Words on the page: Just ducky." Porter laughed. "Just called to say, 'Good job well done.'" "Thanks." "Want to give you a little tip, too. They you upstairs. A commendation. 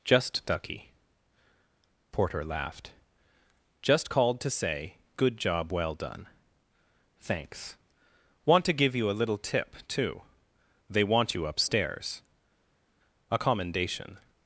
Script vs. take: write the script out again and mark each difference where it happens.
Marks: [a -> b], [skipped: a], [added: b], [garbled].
Just ducky." Porter laughed. "Just called to say, 'Good job well done.'" "Thanks." "Want to give you a little tip, too. They [added: want] you upstairs. A commendation.